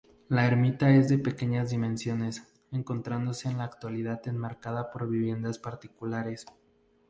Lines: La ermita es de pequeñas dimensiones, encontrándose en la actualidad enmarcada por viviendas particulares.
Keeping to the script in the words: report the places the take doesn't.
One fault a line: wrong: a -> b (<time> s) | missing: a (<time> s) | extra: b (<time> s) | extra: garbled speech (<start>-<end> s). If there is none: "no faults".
no faults